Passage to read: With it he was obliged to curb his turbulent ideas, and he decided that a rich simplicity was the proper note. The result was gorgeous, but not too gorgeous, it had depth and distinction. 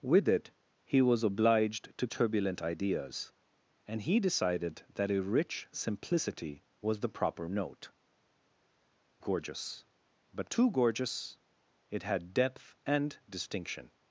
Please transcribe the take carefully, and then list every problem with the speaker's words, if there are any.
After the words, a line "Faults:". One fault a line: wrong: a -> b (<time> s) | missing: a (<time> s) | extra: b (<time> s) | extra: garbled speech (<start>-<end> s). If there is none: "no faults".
With it he was obliged to turbulent ideas, and he decided that a rich simplicity was the proper note. Gorgeous, but too gorgeous, it had depth and distinction.
Faults:
missing: curb his (2.1 s)
missing: The result was (7.9 s)
missing: not (10.5 s)